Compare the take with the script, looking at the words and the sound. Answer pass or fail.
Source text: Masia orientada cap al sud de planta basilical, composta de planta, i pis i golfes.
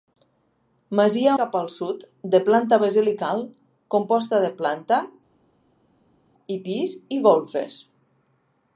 fail